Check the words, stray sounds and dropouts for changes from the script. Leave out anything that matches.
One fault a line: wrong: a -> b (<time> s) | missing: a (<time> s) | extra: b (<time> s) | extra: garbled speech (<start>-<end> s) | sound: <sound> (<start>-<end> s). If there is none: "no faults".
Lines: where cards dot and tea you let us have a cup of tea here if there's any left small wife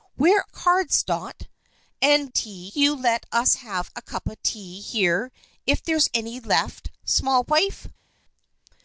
no faults